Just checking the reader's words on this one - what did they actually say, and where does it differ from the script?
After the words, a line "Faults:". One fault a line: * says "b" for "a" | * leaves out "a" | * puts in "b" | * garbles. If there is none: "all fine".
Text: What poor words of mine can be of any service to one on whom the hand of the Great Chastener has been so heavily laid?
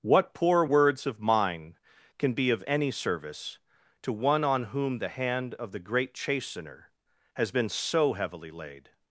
What poor words of mine can be of any service to one on whom the hand of the Great Chastener has been so heavily laid?
Faults:
all fine